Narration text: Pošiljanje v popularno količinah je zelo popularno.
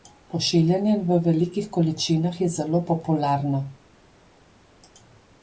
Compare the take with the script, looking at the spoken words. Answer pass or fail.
fail